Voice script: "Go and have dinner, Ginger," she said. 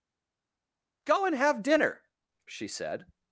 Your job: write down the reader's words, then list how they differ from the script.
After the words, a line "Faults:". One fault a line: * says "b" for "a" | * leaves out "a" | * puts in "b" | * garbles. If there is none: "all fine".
"Go and have dinner," She said.
Faults:
* leaves out "Ginger"